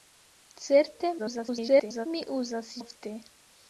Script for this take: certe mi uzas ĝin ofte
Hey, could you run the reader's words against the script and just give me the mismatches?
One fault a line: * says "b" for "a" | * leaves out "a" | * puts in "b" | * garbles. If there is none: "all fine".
* garbles
* leaves out "ĝin"